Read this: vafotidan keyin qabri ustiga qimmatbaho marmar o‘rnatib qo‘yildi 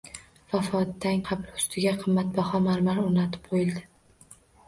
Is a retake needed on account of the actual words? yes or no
yes